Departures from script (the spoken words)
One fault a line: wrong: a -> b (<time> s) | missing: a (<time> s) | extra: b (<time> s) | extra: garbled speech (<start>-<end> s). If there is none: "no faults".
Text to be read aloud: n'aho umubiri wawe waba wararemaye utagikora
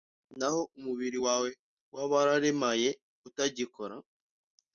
no faults